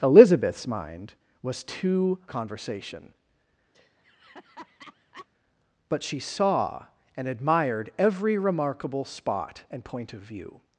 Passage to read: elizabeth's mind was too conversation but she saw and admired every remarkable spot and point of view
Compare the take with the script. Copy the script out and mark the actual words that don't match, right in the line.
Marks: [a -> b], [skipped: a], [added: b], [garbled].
elizabeth's mind was too conversation but she saw and admired every remarkable spot and point of view